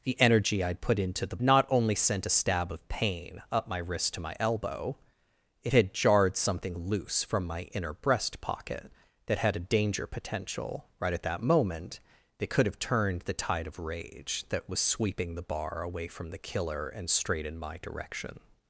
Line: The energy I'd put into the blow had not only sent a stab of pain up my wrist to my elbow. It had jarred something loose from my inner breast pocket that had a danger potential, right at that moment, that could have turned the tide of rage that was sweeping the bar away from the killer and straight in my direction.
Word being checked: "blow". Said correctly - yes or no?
no